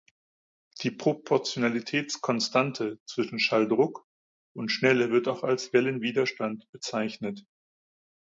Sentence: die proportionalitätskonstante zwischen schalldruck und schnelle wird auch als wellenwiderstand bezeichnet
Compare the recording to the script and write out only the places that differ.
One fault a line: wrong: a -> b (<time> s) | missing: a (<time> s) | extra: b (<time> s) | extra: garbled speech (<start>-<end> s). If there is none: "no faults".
no faults